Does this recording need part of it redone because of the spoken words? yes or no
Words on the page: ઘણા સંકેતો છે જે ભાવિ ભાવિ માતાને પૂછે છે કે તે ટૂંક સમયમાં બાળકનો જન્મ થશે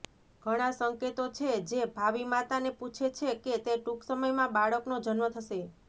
yes